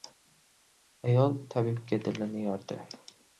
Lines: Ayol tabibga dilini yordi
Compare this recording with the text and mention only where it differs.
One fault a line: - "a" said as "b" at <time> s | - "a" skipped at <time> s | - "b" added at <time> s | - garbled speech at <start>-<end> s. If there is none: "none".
none